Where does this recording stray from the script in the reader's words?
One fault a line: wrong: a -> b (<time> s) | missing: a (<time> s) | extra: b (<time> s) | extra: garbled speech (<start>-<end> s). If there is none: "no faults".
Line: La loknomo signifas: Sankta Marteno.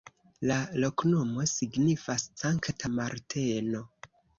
no faults